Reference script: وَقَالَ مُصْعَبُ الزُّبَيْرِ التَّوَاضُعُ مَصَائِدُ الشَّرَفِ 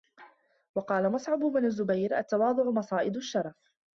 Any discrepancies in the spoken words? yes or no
yes